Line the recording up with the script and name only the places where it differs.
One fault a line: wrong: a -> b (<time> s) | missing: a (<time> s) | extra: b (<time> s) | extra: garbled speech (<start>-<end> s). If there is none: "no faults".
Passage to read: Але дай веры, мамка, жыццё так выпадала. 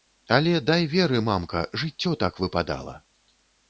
no faults